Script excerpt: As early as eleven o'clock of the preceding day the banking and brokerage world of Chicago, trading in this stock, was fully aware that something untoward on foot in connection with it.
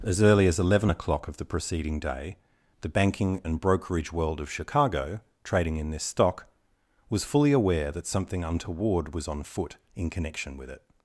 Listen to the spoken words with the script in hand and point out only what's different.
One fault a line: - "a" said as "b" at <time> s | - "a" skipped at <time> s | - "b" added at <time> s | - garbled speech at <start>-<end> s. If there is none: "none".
- "was" added at 9.1 s